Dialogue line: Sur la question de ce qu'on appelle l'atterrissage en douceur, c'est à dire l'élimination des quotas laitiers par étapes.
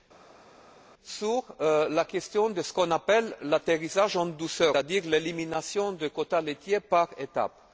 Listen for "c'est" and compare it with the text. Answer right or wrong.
wrong